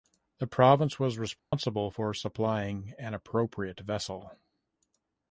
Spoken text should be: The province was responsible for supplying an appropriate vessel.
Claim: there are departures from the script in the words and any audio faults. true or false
true